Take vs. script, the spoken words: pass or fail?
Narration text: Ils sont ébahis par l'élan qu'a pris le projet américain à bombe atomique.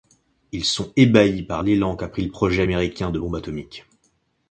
fail